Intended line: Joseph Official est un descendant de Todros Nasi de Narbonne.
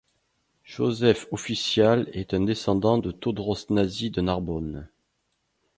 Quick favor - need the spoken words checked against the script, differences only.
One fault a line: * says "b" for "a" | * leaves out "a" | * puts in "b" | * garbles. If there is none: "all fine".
all fine